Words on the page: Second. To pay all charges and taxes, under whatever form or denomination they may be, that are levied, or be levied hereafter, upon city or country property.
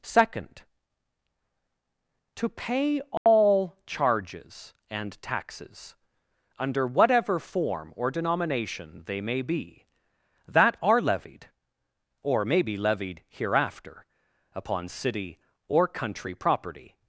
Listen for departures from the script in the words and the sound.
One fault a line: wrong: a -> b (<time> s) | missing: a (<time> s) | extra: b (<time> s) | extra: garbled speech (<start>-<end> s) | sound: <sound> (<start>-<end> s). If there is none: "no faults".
sound: dropout (3.2-3.3 s)
extra: may (12.5 s)